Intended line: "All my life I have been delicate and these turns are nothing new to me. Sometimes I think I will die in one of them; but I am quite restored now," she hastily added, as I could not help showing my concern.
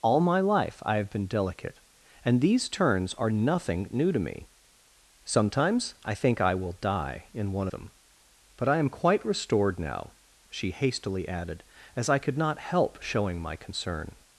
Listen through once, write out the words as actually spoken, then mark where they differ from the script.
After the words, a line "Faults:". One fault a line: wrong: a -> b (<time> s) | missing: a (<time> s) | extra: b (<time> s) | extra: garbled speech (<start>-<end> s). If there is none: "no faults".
"All my life I have been delicate and these turns are nothing new to me. Sometimes I think I will die in one them; but I am quite restored now," she hastily added, as I could not help showing my concern.
Faults:
missing: of (7.7 s)